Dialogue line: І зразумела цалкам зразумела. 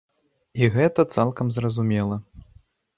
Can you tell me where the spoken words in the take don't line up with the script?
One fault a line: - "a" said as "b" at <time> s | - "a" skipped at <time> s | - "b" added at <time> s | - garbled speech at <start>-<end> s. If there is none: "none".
- "зразумела" said as "гэта" at 0.8 s